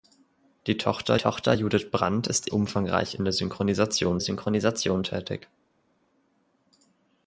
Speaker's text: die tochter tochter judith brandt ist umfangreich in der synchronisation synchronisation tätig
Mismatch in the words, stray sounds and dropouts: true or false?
false